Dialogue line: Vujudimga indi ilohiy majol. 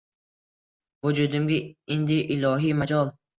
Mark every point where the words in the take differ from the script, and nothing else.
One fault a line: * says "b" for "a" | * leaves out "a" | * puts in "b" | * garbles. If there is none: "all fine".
all fine